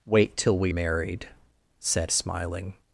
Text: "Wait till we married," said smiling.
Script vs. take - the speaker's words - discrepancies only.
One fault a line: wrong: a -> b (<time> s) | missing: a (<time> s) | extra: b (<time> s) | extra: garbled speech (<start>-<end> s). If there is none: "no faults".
no faults